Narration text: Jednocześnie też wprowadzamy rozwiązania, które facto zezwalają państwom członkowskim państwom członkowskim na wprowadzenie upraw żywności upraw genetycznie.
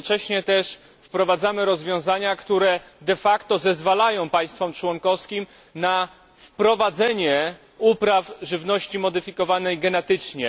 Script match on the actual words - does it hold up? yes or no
no